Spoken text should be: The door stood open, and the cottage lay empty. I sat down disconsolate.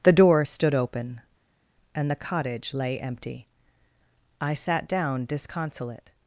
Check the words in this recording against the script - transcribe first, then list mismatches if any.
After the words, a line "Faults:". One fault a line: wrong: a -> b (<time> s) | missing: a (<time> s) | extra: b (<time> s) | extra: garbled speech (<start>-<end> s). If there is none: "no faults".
The door stood open, and the cottage lay empty. I sat down disconsolate.
Faults:
no faults